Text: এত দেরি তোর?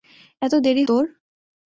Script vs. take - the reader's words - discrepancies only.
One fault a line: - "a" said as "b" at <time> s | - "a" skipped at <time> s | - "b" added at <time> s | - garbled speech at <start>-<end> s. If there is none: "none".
none